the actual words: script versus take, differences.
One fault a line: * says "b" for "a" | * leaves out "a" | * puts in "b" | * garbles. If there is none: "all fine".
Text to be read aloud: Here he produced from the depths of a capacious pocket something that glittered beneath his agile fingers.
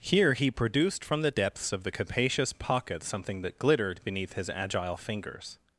* says "the" for "a"